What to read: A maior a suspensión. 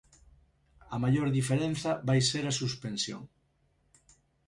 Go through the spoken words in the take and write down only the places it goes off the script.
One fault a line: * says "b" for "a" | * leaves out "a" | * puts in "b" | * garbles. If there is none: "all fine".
* puts in "diferenza vai ser"